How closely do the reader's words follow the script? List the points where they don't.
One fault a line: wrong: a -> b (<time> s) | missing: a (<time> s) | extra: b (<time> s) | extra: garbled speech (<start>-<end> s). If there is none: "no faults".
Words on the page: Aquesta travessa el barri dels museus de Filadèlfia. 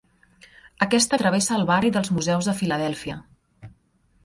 no faults